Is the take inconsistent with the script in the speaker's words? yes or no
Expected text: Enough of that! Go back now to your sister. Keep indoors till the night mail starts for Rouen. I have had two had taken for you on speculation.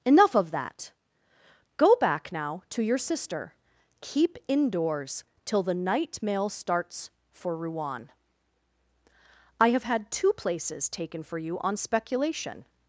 yes